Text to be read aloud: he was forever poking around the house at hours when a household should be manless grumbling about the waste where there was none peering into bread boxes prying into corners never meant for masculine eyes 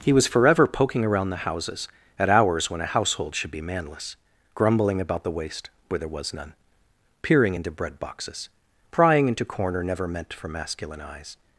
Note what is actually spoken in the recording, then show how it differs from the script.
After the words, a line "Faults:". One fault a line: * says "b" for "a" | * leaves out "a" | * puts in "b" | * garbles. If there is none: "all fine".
he was forever poking around the houses at hours when a household should be manless grumbling about the waste where there was none peering into bread boxes prying into corner never meant for masculine eyes
Faults:
* says "houses" for "house"
* says "corner" for "corners"